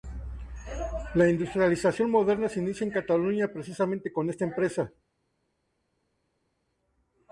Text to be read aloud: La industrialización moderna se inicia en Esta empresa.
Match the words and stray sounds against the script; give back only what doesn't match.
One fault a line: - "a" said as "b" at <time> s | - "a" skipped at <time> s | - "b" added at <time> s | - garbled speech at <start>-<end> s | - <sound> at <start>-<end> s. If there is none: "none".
- "Cataluña precisamente con" added at 2.9 s